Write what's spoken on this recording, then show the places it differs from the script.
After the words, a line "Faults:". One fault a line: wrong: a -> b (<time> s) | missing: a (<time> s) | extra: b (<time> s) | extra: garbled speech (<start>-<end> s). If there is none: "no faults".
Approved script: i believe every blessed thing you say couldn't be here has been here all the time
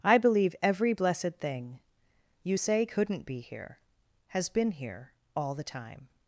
i believe every blessed thing you say couldn't be here has been here all the time
Faults:
no faults